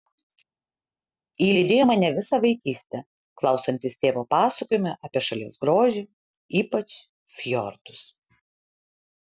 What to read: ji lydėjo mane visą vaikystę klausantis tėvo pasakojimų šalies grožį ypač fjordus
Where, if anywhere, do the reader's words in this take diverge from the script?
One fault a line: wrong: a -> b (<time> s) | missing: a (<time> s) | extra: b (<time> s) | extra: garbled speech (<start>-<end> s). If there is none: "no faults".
extra: apie (5.1 s)